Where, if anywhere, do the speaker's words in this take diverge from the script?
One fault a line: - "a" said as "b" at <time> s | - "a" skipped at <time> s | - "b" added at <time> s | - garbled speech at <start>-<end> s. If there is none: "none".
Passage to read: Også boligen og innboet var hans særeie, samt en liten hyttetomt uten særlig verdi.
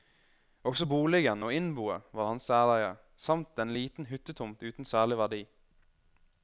none